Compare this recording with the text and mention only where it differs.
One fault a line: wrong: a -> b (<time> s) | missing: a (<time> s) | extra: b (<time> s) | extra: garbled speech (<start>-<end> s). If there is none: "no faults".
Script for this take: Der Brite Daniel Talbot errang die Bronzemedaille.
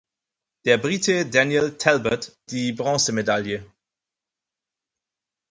missing: errang (2.3 s)